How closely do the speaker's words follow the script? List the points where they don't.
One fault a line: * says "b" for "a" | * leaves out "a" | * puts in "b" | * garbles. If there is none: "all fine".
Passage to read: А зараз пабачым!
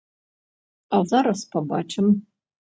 all fine